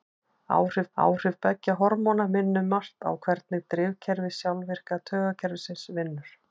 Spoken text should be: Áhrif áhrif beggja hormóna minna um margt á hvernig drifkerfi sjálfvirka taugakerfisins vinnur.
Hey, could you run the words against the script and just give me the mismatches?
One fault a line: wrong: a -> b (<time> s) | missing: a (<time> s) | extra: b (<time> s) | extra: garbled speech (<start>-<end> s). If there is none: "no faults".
no faults